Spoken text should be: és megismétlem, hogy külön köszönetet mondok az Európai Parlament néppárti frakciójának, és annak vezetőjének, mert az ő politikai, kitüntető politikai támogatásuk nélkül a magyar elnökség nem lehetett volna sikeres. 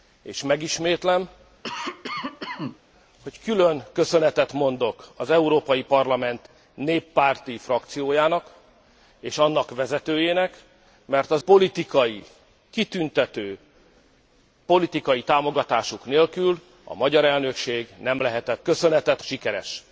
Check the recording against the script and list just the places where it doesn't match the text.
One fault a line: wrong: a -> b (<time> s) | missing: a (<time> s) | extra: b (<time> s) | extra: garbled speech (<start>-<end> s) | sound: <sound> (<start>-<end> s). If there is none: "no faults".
sound: cough (1.6-2.8 s)
missing: ő (11.4 s)
wrong: volna -> köszönetet (18.6 s)